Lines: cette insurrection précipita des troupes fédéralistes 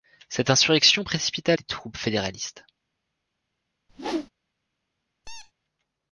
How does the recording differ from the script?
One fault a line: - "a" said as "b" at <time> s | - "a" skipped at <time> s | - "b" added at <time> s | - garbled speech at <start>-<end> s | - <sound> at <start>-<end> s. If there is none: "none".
- whoosh at 3.9-4.3 s
- squeak at 5.2-5.5 s